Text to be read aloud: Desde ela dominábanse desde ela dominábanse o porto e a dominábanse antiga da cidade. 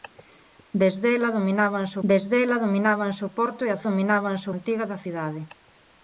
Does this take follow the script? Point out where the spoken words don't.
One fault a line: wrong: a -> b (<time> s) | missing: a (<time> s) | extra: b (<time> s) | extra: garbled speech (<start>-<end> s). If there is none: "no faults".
no faults